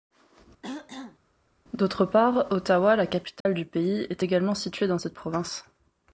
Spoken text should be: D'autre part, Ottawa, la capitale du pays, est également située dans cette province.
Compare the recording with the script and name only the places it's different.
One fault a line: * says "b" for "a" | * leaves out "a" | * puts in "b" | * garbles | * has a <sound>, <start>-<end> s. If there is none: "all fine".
* has a throat clearing, 0.6-1.2 s
* has a dropout, 3.4-3.5 s